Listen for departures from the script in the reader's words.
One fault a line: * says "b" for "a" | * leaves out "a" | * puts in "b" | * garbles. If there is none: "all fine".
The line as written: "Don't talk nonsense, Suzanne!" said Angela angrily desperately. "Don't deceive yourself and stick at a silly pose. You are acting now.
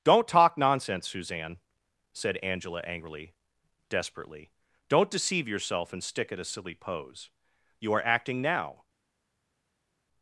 all fine